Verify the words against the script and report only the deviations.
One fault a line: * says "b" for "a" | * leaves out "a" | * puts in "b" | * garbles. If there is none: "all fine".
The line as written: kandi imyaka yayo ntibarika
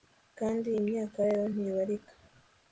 all fine